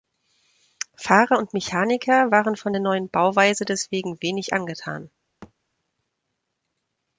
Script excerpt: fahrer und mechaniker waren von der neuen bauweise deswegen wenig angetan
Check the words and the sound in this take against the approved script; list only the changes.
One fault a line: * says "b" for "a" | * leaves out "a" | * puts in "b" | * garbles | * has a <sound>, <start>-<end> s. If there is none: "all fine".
* has a thud, 5.4-5.5 s